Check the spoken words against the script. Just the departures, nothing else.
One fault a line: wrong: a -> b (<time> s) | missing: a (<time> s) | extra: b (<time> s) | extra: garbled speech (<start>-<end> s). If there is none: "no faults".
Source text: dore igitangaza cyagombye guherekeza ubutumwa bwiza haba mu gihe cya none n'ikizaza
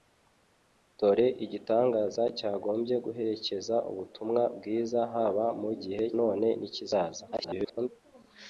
missing: cya (6.0 s)
extra: garbled speech (7.3-7.9 s)